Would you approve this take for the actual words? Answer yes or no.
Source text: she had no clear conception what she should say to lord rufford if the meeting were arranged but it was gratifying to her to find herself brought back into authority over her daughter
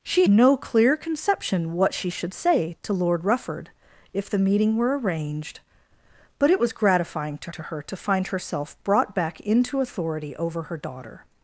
no